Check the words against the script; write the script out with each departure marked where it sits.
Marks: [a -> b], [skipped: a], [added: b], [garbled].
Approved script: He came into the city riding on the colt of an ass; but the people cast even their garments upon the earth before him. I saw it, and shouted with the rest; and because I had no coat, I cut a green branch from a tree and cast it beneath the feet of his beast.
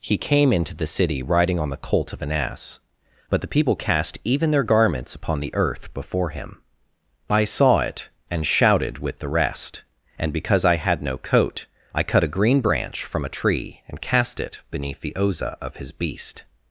He came into the city riding on the colt of an ass; but the people cast even their garments upon the earth before him. I saw it, and shouted with the rest; and because I had no coat, I cut a green branch from a tree and cast it beneath the [feet -> oza] of his beast.